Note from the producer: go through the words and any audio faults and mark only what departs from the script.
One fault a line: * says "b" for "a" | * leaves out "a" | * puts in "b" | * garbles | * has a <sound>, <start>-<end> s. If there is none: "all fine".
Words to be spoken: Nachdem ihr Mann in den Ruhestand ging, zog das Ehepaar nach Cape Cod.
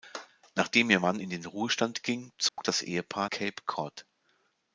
* has a dropout, 2.5-2.6 s
* leaves out "nach"